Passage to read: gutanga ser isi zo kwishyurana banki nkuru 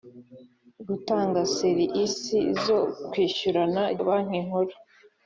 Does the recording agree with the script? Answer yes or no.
yes